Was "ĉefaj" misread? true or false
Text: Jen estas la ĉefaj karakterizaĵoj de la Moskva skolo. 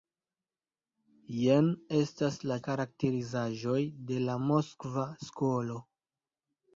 true